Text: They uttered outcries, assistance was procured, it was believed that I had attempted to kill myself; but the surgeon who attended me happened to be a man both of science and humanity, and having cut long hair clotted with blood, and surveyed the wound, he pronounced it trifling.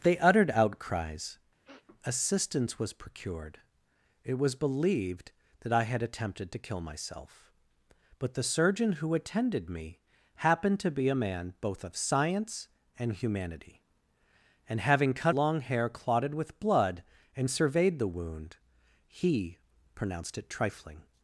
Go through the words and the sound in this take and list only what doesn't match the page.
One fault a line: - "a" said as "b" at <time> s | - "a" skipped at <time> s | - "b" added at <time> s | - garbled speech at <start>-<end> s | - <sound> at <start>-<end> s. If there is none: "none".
- sniff at 1.6-1.9 s